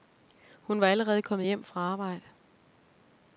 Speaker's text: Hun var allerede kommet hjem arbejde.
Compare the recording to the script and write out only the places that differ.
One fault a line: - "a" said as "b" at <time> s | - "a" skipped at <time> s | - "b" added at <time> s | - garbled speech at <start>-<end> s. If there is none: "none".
- "fra" added at 1.6 s